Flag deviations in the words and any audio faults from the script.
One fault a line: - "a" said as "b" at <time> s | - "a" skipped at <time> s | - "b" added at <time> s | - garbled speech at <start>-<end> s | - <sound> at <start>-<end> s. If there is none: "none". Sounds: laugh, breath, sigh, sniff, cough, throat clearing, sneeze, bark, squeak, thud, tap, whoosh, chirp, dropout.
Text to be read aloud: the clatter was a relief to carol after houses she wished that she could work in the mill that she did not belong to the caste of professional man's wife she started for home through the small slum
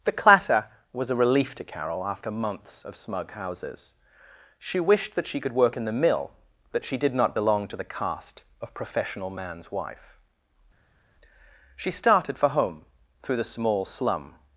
- "months of smug" added at 2.3 s